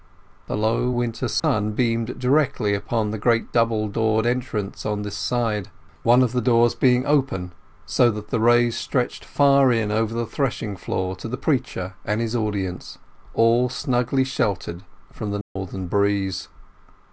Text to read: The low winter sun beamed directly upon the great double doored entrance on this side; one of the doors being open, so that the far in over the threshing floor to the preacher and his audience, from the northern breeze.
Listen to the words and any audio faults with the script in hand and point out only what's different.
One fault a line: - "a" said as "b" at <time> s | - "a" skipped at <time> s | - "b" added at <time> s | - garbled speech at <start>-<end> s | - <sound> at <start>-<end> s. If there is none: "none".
- dropout at 1.4-1.4 s
- "rays stretched" added at 8.4 s
- "all snugly sheltered" added at 13.3 s
- dropout at 15.4-15.6 s